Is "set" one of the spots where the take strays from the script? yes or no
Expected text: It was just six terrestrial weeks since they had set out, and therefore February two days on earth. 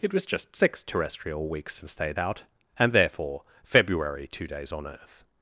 yes